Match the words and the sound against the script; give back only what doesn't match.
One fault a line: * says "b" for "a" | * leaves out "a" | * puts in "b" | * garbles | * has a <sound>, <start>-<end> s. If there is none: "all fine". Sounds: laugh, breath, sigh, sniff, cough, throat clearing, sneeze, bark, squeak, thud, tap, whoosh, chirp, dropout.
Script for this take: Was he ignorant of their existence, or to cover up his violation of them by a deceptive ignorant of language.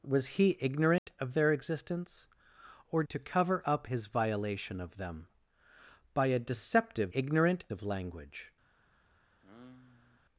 * has a dropout, 1.0-1.1 s
* has a sigh, 9.4-10.2 s